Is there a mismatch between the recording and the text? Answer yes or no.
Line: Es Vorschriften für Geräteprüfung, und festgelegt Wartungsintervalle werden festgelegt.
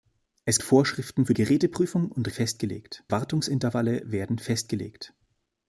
no